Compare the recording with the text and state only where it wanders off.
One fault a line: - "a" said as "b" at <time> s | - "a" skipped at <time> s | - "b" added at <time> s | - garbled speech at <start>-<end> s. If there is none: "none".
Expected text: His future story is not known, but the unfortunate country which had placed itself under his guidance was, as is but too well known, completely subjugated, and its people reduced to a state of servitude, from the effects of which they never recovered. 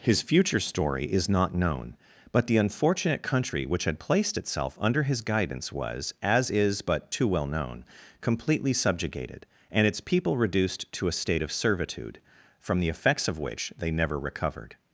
none